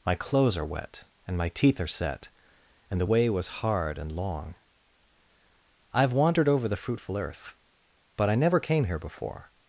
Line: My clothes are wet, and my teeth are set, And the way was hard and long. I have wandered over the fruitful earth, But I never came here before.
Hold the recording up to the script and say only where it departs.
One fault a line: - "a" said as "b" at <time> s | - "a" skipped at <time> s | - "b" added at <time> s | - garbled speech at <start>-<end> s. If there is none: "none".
none